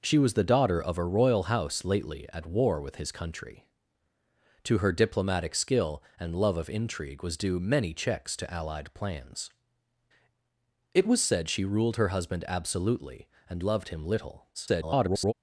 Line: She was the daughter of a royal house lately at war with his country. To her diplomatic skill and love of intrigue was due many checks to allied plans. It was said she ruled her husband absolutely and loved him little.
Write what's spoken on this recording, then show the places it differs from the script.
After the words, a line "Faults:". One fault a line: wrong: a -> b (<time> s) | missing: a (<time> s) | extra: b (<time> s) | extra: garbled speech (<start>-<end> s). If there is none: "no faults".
She was the daughter of a royal house lately at war with his country. To her diplomatic skill and love of intrigue was due many checks to allied plans. It was said she ruled her husband absolutely and loved him little. [garbled]
Faults:
extra: garbled speech (14.5-15.3 s)